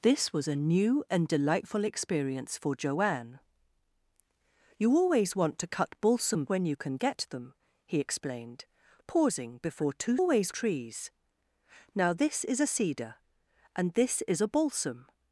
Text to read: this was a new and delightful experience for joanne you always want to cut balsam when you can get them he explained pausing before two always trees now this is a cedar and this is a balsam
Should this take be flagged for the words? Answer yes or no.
no